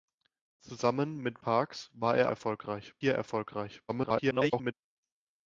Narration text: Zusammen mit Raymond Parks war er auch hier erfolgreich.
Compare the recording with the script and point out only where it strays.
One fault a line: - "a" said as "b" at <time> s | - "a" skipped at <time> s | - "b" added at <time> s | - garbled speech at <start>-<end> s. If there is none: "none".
- "Raymond" skipped at 1.4 s
- "auch" said as "erfolgreich" at 2.3 s
- garbled speech at 3.9-4.7 s